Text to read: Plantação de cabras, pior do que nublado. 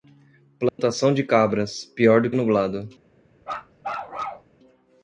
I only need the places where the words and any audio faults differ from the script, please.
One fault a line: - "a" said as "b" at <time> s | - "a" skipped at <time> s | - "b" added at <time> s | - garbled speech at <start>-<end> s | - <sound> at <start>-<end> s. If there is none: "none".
- dropout at 0.7-0.8 s
- "que" skipped at 2.3 s
- bark at 3.4-4.5 s